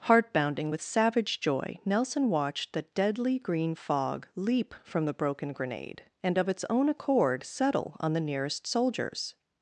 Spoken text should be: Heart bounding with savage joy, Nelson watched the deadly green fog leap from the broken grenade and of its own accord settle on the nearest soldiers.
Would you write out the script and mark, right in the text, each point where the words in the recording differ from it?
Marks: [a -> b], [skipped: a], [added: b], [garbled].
Heart bounding with savage joy, Nelson watched the deadly green fog leap from the broken grenade and of its own accord settle on the nearest soldiers.